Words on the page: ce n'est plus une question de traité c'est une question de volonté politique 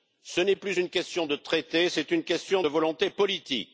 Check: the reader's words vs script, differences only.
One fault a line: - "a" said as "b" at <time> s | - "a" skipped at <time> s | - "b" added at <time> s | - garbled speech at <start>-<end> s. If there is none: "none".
none